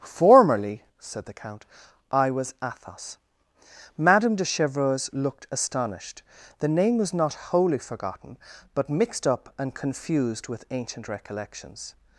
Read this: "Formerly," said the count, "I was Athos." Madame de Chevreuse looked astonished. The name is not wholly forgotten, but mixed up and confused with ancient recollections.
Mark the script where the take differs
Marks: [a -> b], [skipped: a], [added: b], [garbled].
"Formerly," said the count, "I was Athos." Madame de Chevreuse looked astonished. The name [is -> was] not wholly forgotten, but mixed up and confused with ancient recollections.